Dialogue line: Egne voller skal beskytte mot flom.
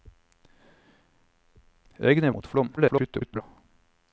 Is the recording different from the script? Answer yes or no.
yes